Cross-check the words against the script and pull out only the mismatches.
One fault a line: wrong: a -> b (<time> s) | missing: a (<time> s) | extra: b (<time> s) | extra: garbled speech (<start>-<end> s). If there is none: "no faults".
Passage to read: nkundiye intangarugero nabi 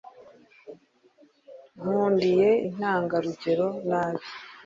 no faults